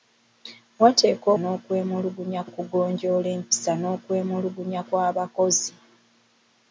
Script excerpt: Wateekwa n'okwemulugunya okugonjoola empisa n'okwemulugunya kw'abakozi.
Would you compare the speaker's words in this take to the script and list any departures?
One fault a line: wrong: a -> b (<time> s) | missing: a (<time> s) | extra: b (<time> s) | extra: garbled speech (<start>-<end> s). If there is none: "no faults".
no faults